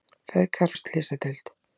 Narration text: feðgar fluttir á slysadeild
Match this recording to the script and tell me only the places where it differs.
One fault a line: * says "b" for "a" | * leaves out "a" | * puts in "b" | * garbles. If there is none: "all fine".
* leaves out "fluttir"